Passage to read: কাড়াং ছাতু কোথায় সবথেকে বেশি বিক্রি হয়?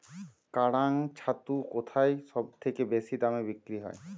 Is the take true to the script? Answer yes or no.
no